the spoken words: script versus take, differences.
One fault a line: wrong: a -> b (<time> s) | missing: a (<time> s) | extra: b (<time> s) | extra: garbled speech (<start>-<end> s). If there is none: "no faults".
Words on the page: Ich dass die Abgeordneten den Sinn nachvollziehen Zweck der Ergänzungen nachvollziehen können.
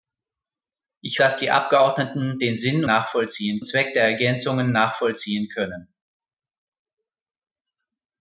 no faults